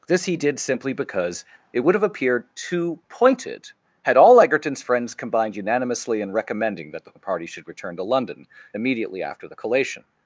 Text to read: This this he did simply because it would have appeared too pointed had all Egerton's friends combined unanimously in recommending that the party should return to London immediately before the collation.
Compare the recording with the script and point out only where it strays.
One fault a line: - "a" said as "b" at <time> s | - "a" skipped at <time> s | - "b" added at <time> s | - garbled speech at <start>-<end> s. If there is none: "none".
- "this" skipped at 0.2 s
- "before" said as "after" at 9.2 s